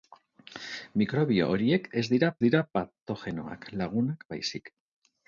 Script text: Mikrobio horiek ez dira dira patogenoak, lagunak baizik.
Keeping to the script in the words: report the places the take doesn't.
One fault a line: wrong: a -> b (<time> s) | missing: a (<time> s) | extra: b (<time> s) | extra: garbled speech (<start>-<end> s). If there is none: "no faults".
no faults